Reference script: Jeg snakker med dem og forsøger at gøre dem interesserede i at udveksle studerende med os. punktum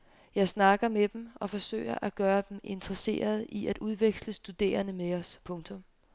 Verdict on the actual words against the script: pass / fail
pass